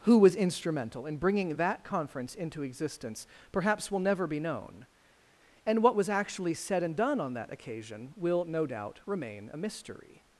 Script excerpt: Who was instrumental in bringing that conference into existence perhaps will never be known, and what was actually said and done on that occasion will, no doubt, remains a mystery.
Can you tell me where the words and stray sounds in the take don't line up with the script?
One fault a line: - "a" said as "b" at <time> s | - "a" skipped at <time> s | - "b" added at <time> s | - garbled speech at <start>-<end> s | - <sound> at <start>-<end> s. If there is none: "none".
- "remains" said as "remain" at 9.1 s